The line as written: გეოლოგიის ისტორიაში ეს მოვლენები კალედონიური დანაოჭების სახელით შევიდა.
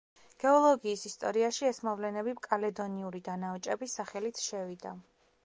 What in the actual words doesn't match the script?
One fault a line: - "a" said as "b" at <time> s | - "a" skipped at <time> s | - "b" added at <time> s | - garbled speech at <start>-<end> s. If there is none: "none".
none